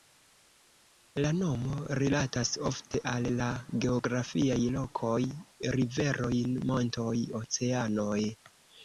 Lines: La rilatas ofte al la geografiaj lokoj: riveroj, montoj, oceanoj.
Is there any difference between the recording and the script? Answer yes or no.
yes